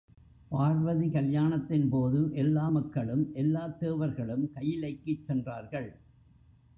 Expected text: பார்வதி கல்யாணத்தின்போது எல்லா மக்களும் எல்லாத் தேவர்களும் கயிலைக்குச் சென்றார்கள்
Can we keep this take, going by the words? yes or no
yes